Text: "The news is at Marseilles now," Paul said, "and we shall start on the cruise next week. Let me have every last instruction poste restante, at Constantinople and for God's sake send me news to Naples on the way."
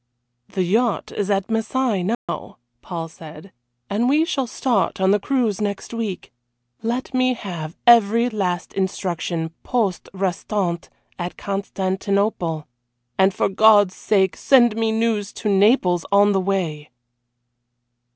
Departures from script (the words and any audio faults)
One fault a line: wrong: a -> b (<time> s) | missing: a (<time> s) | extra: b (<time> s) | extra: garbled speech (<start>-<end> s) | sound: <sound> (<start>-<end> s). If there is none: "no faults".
wrong: news -> yacht (0.6 s)
sound: dropout (2.1-2.3 s)